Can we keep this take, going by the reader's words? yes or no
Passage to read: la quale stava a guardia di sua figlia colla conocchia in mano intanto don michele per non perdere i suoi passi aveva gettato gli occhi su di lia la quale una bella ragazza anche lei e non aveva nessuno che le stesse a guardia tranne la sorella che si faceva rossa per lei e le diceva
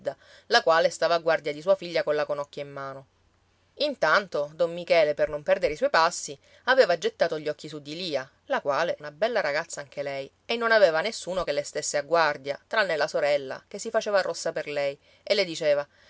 yes